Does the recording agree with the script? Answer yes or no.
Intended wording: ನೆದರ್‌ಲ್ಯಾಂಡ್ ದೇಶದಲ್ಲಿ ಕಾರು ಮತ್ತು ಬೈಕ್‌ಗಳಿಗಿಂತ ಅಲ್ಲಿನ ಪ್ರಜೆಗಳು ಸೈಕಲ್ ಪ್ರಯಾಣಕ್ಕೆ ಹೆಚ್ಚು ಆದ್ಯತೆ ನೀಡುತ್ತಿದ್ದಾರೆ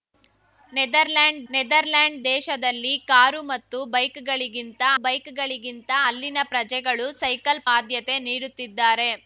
no